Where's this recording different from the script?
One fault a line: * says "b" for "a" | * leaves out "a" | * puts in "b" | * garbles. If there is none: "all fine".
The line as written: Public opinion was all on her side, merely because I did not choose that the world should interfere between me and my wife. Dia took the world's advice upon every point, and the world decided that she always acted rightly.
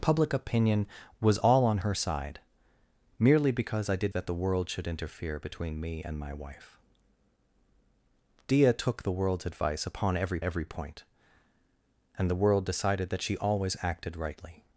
* leaves out "not choose"
* puts in "every"